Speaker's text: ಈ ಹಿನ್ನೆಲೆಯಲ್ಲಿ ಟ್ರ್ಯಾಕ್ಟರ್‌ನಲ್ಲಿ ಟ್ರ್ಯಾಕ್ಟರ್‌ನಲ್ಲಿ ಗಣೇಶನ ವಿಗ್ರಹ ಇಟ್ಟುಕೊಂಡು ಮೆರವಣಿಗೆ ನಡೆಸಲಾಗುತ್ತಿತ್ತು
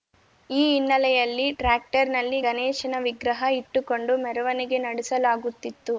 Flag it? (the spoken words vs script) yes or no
yes